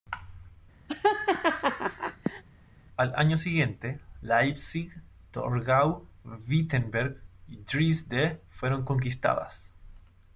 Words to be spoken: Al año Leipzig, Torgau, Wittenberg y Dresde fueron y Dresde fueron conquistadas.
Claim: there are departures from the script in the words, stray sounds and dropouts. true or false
true